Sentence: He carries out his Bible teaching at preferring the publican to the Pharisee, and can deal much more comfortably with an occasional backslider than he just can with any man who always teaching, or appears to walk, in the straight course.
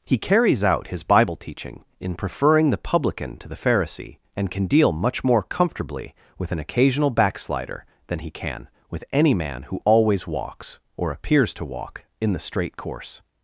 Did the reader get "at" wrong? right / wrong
wrong